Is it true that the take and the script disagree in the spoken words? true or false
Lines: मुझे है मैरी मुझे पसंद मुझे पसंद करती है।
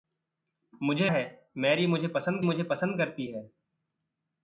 false